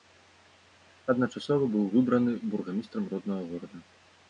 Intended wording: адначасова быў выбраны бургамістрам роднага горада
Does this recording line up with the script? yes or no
yes